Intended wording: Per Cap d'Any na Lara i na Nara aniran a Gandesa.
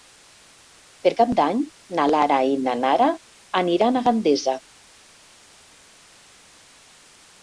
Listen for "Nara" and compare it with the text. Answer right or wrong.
right